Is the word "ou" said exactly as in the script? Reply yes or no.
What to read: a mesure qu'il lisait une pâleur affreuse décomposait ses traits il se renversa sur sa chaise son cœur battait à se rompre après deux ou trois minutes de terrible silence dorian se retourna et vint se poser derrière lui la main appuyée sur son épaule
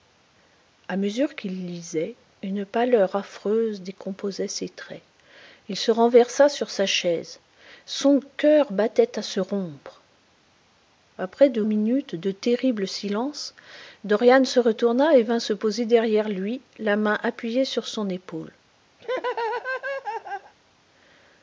no